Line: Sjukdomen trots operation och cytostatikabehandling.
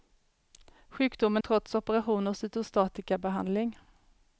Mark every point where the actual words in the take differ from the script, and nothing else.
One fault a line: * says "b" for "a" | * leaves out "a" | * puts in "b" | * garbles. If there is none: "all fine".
all fine